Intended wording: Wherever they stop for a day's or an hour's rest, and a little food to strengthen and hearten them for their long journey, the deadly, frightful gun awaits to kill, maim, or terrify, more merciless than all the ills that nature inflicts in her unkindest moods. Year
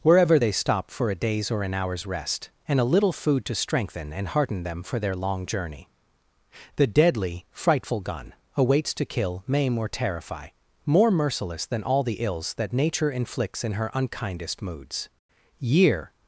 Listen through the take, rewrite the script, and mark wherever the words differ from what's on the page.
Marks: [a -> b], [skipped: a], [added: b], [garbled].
Wherever they stop for a day's or an hour's rest, and a little food to strengthen and hearten them for their long journey, the deadly, frightful gun awaits to kill, maim, or terrify, more merciless than all the ills that nature inflicts in her unkindest moods. Year